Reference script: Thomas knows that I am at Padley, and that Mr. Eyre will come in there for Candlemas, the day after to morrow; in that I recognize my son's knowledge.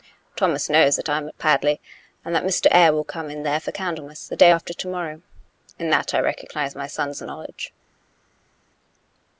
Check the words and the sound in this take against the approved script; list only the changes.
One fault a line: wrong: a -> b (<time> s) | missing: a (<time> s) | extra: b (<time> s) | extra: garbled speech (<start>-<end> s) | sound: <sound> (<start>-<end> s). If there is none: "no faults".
no faults